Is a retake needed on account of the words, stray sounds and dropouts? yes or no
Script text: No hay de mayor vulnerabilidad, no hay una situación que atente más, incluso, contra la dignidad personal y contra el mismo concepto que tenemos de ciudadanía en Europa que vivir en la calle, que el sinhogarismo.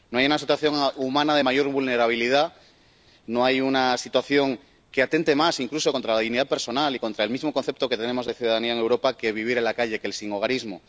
yes